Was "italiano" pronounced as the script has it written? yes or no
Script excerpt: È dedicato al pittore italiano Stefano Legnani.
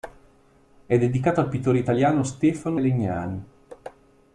yes